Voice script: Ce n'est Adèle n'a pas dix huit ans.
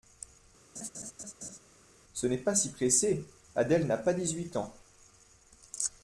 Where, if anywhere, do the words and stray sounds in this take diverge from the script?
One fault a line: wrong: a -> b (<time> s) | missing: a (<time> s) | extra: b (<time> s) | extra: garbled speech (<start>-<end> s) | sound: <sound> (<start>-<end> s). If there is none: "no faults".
sound: laugh (0.8-1.6 s)
extra: pas si pressé (2.4 s)